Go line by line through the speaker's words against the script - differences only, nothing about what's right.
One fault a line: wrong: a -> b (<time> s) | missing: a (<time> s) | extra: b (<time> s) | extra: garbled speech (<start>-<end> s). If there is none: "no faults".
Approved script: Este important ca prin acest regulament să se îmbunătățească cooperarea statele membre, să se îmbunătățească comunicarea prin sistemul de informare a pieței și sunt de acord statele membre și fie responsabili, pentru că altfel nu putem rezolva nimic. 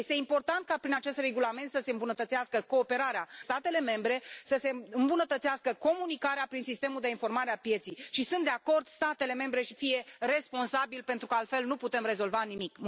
no faults